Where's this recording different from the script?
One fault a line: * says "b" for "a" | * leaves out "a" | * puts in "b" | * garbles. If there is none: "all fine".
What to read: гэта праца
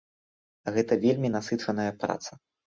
* puts in "вельмі насычаная"